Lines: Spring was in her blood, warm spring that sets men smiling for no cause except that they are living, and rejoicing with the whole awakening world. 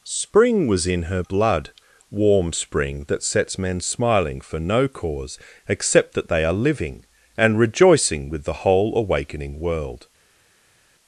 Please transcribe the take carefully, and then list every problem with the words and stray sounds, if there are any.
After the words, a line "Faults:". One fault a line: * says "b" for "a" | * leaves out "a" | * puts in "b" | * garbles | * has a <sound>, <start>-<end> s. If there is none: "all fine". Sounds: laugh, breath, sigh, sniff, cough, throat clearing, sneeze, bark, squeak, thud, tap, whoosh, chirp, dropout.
Spring was in her blood, warm spring that sets men smiling for no cause except that they are living, and rejoicing with the whole awakening world.
Faults:
all fine